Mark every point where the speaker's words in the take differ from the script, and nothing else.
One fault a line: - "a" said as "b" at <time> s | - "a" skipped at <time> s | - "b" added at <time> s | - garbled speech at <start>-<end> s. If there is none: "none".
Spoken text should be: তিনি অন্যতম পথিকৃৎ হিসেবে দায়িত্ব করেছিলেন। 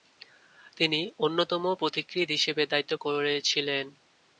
none